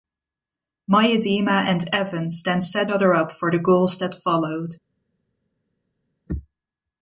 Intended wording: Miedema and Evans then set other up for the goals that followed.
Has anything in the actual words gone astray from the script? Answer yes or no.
no